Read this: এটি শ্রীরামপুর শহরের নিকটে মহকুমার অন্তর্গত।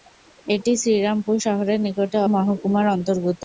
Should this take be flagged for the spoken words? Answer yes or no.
no